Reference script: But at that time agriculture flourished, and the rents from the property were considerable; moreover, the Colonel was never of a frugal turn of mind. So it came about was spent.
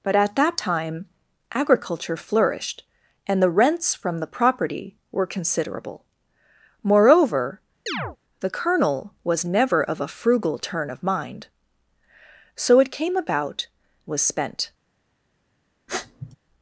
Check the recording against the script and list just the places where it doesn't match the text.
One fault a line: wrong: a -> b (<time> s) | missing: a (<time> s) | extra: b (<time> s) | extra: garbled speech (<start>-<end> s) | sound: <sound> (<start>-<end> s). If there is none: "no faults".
sound: chirp (7.9-8.2 s)
sound: sniff (15.9-16.4 s)